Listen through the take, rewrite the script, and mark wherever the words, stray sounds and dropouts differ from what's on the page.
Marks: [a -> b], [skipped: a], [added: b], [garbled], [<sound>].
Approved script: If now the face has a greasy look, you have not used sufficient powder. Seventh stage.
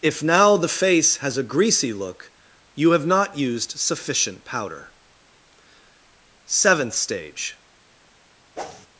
If now the face has a greasy look, you have not used sufficient powder. Seventh stage. [whoosh]